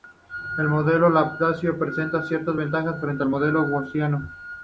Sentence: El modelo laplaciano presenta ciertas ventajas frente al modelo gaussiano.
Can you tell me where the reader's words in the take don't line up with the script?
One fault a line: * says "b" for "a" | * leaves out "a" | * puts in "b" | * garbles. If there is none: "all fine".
all fine